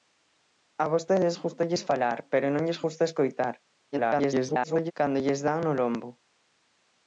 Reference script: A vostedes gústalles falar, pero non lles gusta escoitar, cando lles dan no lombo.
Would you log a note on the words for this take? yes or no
yes